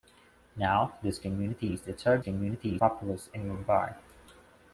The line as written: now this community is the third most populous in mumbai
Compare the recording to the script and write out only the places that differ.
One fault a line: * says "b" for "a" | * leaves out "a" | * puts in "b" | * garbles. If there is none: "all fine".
* says "community" for "most"